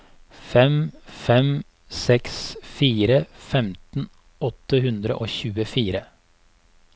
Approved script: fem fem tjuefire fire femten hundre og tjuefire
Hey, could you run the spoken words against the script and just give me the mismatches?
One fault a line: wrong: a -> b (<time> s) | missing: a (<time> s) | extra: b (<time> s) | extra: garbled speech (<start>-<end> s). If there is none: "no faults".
wrong: tjuefire -> seks (2.0 s)
extra: åtte (4.5 s)